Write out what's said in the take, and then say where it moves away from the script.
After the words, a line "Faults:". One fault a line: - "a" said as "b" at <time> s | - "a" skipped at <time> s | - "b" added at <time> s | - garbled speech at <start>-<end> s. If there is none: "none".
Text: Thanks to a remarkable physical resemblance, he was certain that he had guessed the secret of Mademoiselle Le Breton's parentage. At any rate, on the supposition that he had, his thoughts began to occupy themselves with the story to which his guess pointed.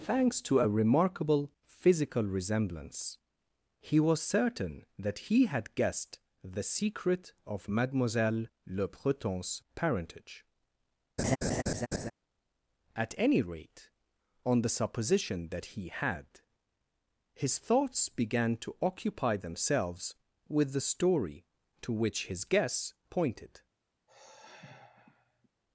Thanks to a remarkable physical resemblance, he was certain that he had guessed the secret of Mademoiselle Le Breton's parentage. At any rate, on the supposition that he had, his thoughts began to occupy themselves with the story to which his guess pointed.
Faults:
none